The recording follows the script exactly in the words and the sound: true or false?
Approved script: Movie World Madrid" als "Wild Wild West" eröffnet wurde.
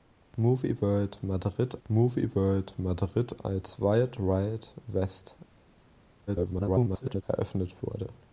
false